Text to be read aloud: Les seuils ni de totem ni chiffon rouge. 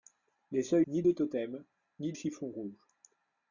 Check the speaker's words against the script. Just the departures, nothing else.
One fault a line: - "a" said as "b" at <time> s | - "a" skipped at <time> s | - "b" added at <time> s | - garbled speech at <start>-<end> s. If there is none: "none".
none